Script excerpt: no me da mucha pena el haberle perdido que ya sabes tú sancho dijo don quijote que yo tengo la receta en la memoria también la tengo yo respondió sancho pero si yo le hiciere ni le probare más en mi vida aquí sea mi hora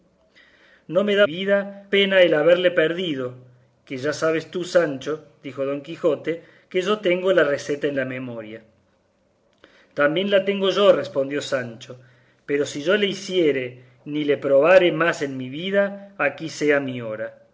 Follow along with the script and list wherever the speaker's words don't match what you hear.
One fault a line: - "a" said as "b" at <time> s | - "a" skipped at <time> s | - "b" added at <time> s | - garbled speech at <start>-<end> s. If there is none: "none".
- "mucha" said as "vida" at 1.2 s